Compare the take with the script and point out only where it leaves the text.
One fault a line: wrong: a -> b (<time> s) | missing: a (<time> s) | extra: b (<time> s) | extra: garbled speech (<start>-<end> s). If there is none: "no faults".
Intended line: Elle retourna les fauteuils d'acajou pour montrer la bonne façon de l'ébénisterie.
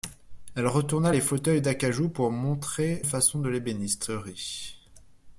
missing: la bonne (3.0 s)